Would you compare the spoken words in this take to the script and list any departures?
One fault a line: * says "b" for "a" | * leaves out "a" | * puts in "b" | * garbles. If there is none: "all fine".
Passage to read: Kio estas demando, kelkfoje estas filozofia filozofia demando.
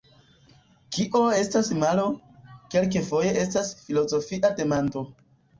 * says "malo" for "demando"
* leaves out "filozofia"